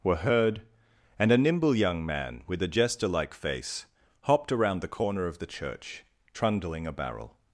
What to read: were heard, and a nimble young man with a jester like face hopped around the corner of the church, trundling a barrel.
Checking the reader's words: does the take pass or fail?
pass